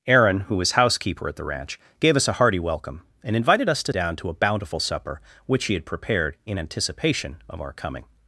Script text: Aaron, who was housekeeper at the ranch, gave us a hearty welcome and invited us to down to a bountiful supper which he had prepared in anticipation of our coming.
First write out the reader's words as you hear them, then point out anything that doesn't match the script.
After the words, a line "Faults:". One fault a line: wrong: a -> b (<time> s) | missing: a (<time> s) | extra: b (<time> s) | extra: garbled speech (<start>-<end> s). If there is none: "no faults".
Aaron, who was housekeeper at the ranch, gave us a hearty welcome and invited us to down to a bountiful supper which he had prepared in anticipation of our coming.
Faults:
no faults